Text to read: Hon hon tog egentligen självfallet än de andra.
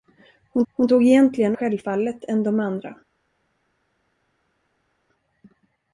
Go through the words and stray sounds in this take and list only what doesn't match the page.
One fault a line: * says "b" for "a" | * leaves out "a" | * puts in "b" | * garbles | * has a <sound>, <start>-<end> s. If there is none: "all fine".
all fine